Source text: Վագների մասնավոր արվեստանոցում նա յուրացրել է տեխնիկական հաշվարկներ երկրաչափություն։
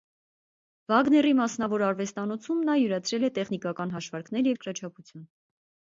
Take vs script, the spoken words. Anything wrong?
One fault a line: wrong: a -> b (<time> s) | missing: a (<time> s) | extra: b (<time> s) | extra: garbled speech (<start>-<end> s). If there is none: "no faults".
no faults